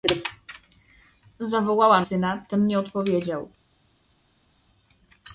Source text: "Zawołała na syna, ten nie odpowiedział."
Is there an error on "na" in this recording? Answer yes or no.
yes